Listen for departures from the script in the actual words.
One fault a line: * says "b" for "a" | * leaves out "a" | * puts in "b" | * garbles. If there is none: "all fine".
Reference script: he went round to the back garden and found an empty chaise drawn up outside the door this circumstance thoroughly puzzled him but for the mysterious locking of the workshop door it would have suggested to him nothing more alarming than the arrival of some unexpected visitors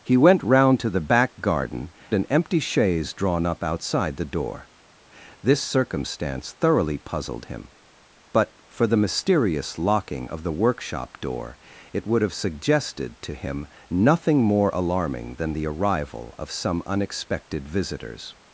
* leaves out "and found"